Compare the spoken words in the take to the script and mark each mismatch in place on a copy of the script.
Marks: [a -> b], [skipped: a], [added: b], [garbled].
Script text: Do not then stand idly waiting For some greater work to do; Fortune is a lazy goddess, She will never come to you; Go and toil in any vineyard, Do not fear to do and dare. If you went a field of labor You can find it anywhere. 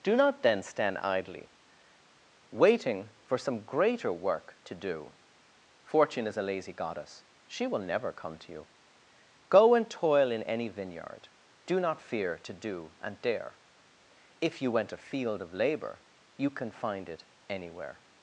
Do not then stand idly waiting For some greater work to do; Fortune is a lazy goddess, She will never come to you; Go and toil in any vineyard, Do not fear to do and dare. If you went a field of labor You can find it anywhere.